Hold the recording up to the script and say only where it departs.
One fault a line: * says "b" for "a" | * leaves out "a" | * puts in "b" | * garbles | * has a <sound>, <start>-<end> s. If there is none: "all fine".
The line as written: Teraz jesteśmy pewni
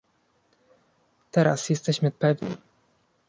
all fine